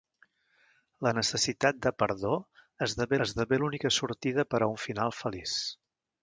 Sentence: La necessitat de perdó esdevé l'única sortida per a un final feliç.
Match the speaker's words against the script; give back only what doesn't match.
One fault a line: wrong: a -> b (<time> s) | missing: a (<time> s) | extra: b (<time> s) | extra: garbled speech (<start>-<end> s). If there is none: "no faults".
extra: esdevé (3.3 s)